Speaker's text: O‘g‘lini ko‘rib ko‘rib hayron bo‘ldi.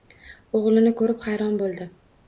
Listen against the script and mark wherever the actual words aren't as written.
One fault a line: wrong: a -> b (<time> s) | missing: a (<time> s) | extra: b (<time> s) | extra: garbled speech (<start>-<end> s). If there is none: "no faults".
missing: ko‘rib (1.3 s)